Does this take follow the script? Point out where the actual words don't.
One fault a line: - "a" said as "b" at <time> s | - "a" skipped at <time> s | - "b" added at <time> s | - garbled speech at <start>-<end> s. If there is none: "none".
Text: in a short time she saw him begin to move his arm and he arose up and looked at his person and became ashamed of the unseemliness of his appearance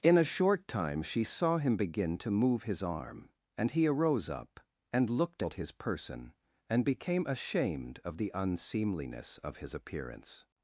none